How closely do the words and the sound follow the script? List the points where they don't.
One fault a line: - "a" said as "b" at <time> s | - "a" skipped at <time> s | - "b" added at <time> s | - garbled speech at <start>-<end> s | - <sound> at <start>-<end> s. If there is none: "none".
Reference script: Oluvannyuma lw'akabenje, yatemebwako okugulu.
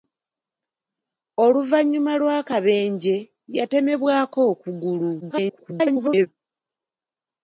- garbled speech at 5.2-6.3 s